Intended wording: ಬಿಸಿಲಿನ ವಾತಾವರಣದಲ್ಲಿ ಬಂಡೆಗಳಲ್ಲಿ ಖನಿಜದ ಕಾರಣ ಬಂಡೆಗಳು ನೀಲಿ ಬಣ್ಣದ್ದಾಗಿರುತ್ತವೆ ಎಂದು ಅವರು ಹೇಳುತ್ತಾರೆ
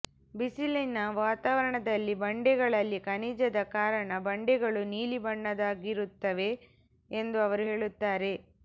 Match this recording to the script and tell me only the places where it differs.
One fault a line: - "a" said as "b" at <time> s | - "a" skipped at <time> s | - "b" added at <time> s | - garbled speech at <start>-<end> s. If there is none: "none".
none